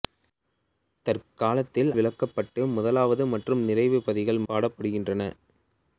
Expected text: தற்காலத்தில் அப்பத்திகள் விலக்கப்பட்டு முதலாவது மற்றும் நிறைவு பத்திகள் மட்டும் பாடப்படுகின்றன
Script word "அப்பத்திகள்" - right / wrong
wrong